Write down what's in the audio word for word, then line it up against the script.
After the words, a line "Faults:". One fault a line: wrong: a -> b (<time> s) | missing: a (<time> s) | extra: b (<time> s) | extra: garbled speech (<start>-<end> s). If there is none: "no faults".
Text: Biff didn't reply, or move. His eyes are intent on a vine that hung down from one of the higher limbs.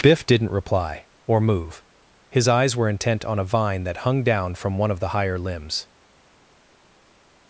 Biff didn't reply, or move. His eyes were intent on a vine that hung down from one of the higher limbs.
Faults:
wrong: are -> were (2.8 s)